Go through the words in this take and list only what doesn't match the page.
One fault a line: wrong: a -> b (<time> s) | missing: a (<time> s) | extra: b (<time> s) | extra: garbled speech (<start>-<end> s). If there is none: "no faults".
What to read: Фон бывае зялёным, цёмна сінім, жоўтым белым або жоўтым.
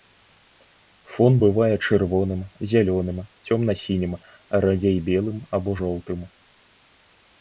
extra: чырвоным (1.9 s)
wrong: жоўтым -> радзей (4.7 s)